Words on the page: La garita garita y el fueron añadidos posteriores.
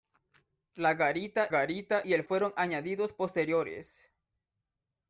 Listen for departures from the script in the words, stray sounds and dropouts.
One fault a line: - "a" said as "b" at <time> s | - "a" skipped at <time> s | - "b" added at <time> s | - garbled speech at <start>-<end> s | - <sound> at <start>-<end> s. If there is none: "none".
none